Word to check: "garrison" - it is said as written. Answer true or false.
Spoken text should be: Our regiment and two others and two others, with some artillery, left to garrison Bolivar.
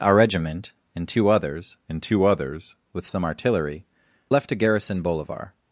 true